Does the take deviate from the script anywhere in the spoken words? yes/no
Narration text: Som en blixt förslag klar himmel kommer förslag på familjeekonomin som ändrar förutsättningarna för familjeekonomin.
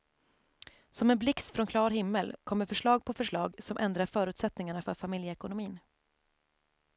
yes